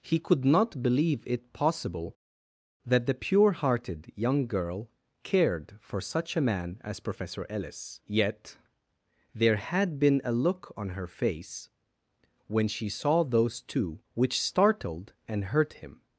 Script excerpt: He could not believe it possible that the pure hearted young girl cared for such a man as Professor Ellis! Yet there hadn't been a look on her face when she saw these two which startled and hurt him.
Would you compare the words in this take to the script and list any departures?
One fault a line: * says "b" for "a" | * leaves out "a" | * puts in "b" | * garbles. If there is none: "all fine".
* says "had" for "hadn't"
* says "those" for "these"